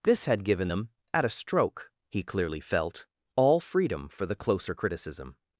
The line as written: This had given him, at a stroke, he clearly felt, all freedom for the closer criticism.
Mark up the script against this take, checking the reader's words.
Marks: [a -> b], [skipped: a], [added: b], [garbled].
This had given [him, -> them] at a stroke, he clearly felt, all freedom for the closer criticism.